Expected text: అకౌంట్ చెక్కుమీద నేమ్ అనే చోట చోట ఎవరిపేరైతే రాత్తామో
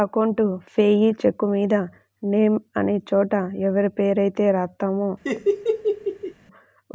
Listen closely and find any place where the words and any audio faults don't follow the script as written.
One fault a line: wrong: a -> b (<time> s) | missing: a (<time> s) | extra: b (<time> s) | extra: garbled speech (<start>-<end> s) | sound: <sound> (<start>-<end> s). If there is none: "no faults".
extra: పేయీ (0.7 s)
missing: చోట (3.3 s)
sound: laugh (5.2-6.3 s)